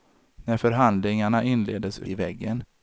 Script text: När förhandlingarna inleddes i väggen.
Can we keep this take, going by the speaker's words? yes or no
yes